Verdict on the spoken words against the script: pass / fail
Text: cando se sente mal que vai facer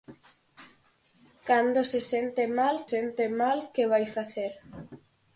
fail